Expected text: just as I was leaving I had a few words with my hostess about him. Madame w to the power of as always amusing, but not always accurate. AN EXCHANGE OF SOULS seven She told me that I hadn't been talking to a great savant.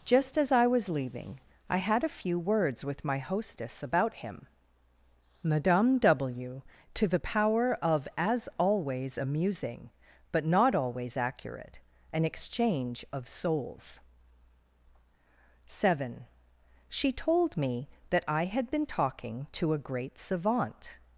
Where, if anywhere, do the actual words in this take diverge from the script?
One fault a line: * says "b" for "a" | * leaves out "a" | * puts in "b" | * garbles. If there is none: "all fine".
* says "had" for "hadn't"